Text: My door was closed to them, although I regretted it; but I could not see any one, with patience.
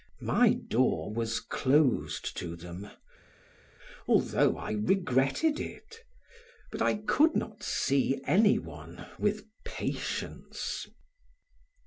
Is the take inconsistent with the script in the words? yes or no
no